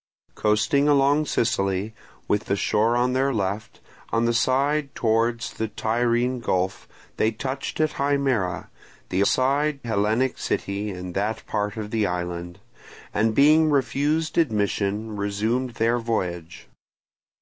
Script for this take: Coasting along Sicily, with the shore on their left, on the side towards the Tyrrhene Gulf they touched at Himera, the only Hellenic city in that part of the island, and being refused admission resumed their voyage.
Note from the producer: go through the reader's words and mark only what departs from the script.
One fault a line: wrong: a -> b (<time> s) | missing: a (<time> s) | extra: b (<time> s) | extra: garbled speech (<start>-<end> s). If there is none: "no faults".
wrong: only -> side (9.2 s)